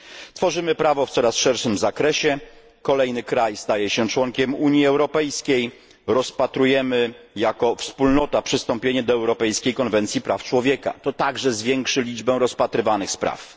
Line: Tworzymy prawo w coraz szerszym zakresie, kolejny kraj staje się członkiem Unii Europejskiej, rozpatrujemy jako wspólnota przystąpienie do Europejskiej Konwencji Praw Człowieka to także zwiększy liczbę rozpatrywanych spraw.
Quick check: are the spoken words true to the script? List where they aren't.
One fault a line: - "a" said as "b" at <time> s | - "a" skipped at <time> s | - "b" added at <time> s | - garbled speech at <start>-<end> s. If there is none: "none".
none